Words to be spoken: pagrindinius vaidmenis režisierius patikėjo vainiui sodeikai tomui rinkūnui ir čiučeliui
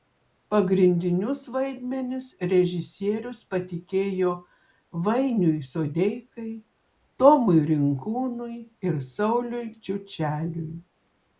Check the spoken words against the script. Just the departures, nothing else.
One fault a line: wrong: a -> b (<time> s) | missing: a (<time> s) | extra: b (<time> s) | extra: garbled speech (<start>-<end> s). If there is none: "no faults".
extra: sauliui (9.1 s)